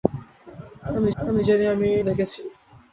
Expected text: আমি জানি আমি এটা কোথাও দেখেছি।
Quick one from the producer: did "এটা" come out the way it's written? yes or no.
no